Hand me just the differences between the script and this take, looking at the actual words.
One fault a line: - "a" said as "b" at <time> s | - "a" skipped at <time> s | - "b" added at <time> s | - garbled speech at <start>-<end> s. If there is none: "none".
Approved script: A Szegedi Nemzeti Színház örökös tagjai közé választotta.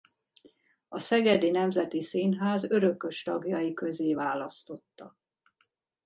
none